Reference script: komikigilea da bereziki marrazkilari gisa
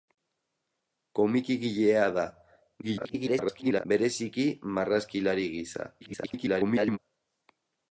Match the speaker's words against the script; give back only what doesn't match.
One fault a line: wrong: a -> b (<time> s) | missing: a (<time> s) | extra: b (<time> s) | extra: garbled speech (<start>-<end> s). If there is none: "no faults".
extra: garbled speech (2.8-3.9 s)
extra: garbled speech (6.0-7.0 s)